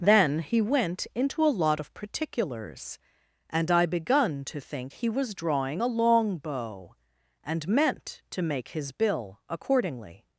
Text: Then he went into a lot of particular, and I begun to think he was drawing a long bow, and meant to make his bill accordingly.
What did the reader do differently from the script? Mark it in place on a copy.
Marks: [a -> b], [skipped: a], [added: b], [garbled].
Then he went into a lot of [particular, -> particulars] and I begun to think he was drawing a long bow, and meant to make his bill accordingly.